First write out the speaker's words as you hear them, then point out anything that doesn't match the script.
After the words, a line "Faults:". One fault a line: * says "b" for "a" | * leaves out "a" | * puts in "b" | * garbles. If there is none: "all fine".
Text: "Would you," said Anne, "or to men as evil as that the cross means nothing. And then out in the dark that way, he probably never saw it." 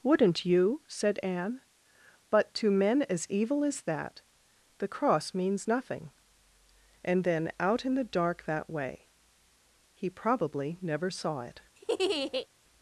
"Wouldn't you," said Anne, "but to men as evil as that the cross means nothing. And then out in the dark that way, he probably never saw it."
Faults:
* says "Wouldn't" for "Would"
* says "but" for "or"